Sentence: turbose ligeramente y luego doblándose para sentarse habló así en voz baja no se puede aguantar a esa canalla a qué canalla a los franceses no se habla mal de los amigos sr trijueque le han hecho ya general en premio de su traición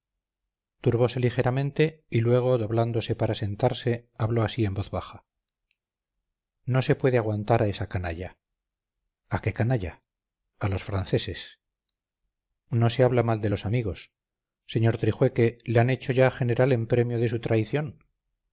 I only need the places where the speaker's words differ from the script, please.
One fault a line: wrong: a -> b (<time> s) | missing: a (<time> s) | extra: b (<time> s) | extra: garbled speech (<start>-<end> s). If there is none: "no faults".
no faults